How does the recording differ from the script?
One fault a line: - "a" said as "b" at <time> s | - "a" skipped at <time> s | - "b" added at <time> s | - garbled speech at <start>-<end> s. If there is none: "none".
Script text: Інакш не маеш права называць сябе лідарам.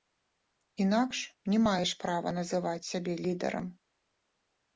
none